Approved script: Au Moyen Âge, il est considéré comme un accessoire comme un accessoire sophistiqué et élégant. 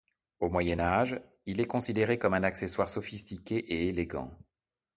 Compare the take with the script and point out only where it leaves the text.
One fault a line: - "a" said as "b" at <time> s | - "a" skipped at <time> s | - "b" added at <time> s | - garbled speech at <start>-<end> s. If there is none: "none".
- "comme un accessoire" skipped at 2.9 s